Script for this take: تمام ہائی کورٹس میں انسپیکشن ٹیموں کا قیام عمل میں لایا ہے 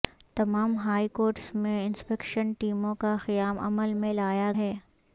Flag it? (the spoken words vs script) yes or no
no